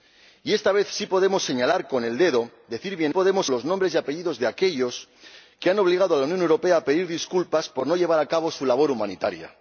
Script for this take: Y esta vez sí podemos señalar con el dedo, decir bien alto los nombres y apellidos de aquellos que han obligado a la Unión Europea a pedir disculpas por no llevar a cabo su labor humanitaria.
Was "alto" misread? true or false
true